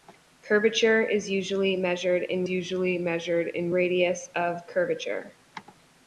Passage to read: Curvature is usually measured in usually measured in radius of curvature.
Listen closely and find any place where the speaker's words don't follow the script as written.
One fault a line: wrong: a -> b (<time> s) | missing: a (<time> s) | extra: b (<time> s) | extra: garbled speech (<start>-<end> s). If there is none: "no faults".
no faults